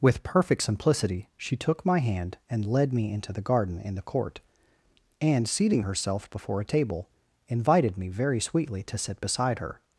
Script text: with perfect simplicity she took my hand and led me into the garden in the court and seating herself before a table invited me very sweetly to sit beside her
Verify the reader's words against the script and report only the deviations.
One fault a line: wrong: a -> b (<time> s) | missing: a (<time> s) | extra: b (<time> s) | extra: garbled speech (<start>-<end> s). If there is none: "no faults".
no faults